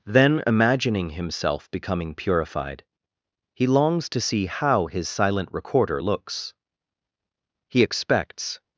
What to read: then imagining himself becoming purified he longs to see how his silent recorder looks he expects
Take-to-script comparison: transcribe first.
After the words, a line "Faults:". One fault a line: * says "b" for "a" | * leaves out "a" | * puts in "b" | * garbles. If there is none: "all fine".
then imagining himself becoming purified he longs to see how his silent recorder looks he expects
Faults:
all fine